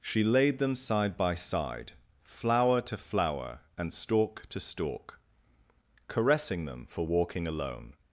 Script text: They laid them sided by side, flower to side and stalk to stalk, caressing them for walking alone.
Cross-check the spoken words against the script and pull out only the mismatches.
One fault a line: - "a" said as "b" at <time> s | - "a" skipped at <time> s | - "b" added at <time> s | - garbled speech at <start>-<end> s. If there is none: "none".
- "They" said as "She" at 0.0 s
- "sided" said as "side" at 0.8 s
- "side" said as "flower" at 3.0 s